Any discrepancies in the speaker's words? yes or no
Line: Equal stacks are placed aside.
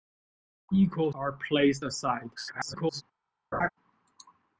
yes